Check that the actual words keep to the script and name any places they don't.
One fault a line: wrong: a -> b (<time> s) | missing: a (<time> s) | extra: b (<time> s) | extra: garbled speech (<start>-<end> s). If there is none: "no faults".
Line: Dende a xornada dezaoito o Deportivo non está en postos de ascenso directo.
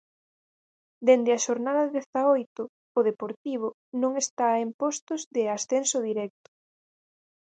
no faults